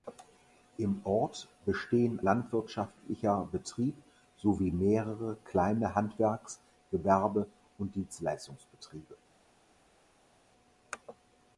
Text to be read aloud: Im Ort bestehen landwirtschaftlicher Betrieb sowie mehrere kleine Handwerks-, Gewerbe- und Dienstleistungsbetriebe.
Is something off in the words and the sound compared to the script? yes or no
no